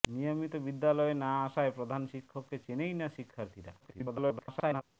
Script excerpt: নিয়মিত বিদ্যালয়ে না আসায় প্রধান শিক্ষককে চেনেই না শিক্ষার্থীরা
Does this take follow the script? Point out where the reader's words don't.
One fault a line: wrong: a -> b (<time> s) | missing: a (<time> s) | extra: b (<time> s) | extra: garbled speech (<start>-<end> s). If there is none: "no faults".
extra: garbled speech (3.8-4.8 s)